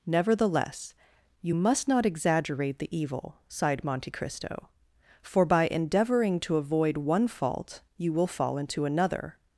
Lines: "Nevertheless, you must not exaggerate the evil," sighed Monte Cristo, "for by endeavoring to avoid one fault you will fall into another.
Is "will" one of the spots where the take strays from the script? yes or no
no